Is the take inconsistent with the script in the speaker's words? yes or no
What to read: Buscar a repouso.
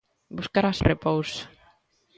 no